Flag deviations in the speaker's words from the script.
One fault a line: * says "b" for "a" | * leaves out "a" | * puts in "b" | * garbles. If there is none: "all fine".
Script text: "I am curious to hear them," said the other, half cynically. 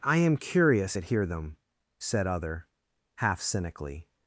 * says "at" for "to"
* leaves out "the"